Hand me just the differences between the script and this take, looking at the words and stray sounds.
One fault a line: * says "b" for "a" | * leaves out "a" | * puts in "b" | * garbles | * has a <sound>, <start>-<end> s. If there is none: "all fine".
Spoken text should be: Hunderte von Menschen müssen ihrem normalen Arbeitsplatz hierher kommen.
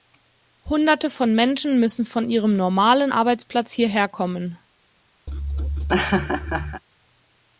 * puts in "von"
* has a laugh, 5.3-6.8 s